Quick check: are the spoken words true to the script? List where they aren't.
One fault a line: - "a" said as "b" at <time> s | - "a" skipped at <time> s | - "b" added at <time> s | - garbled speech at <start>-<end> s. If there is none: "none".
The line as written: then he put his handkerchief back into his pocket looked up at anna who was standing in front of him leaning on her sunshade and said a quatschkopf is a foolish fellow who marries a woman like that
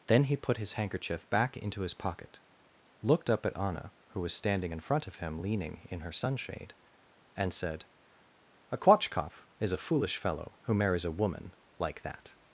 - "on" said as "in" at 5.9 s